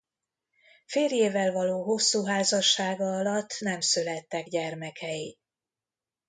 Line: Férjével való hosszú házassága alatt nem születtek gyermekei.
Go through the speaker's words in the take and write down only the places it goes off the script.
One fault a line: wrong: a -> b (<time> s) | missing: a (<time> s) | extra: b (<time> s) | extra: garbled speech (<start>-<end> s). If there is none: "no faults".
no faults